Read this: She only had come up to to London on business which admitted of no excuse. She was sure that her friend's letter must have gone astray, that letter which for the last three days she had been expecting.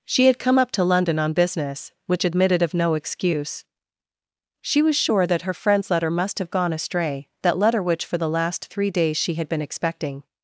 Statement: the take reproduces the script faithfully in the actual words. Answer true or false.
false